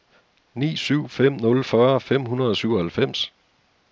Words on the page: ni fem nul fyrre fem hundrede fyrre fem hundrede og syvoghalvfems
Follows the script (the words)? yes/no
no